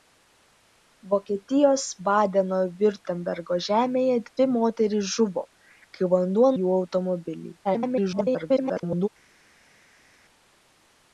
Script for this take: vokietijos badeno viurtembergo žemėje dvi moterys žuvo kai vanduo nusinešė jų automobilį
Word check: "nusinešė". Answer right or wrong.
wrong